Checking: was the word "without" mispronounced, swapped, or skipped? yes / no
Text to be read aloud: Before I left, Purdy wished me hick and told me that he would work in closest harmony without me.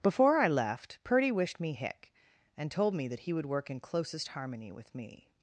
yes